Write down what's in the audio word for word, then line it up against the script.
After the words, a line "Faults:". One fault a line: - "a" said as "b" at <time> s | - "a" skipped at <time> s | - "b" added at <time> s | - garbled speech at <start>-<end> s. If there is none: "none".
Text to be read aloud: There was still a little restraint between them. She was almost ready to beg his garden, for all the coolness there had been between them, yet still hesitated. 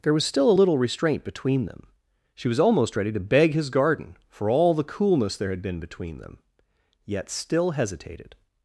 There was still a little restraint between them. She was almost ready to beg his garden, for all the coolness there had been between them, yet still hesitated.
Faults:
none